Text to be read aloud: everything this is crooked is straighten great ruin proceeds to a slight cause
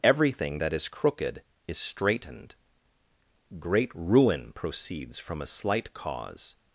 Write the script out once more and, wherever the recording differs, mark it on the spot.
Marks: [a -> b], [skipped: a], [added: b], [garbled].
everything [this -> that] is crooked is [straighten -> straightened] great ruin proceeds [to -> from] a slight cause